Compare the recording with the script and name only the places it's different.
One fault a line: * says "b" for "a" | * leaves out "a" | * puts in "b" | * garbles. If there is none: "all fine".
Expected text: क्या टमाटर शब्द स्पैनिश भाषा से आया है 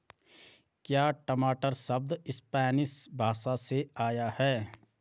all fine